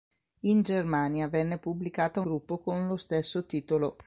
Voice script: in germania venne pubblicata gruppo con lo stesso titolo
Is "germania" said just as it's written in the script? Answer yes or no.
yes